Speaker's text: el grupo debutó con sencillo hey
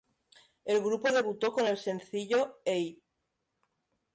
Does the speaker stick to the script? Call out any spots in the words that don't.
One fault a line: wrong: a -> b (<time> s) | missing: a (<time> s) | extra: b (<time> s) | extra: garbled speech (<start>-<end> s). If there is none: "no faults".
extra: el (1.7 s)